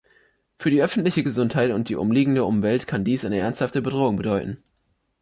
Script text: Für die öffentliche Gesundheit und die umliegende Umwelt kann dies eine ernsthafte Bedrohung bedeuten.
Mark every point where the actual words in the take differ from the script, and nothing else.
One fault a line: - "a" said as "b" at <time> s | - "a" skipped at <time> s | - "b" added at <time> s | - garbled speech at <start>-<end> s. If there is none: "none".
none